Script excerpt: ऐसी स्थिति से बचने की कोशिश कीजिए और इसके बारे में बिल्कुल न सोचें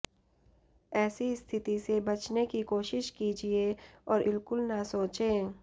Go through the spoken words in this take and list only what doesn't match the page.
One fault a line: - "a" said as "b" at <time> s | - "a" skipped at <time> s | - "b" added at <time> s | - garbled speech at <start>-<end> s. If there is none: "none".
- "इसके बारे में" skipped at 4.2 s